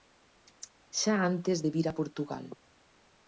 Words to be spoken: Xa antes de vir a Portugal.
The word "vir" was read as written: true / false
true